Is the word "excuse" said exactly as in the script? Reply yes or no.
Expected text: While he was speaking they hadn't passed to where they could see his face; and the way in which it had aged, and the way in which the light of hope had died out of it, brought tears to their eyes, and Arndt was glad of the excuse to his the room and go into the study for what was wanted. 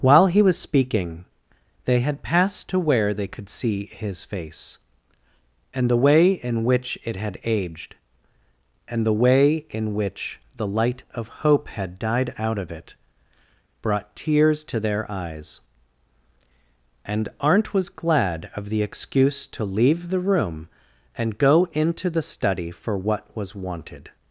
yes